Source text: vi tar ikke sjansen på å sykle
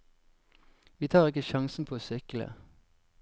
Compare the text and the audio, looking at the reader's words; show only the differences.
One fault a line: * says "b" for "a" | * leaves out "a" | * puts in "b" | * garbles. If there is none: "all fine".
all fine